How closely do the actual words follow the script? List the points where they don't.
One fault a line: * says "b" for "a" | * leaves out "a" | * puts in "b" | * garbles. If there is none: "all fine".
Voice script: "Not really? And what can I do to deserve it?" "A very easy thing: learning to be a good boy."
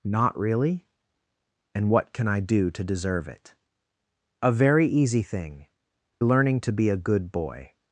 all fine